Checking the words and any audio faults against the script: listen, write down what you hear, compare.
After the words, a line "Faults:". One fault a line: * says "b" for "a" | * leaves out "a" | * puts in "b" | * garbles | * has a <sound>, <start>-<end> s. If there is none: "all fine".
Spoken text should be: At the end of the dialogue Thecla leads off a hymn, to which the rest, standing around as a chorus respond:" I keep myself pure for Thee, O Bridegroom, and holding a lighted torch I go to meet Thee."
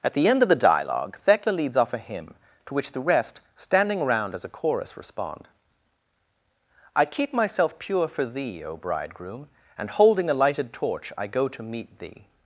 At the end of the dialogue Thecla leads off a hymn, to which the rest, standing around as a chorus respond:" I keep myself pure for Thee, O Bridegroom, and holding a lighted torch I go to meet Thee."
Faults:
all fine